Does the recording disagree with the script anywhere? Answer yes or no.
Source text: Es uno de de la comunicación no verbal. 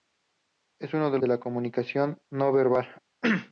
no